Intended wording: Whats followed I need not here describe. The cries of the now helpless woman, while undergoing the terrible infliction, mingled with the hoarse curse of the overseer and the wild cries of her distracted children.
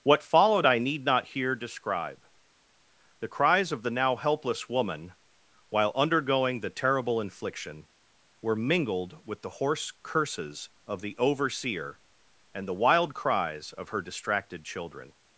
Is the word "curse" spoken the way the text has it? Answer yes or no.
no